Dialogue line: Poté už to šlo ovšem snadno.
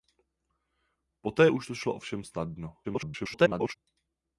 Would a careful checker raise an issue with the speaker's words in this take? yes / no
yes